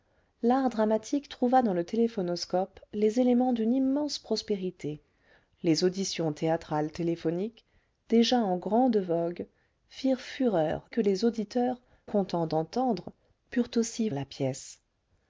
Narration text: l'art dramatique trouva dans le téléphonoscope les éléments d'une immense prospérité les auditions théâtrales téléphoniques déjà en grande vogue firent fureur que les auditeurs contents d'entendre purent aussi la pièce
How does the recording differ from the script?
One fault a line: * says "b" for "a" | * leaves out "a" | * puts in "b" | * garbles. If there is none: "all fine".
all fine